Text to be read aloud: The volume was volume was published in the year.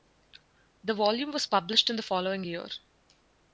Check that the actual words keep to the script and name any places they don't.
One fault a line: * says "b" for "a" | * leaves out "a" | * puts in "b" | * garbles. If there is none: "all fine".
* leaves out "volume was"
* puts in "following"